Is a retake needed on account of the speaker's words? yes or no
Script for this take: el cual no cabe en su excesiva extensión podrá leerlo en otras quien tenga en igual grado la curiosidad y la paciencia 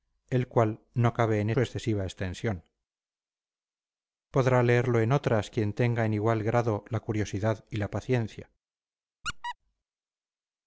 no